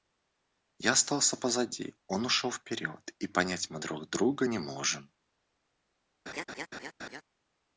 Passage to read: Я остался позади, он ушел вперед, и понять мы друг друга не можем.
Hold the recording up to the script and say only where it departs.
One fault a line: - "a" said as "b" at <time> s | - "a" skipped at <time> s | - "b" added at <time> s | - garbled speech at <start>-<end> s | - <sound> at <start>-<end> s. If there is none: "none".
- laugh at 6.3-7.2 s